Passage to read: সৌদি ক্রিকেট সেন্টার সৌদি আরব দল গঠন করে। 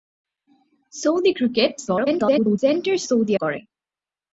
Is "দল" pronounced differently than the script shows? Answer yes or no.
yes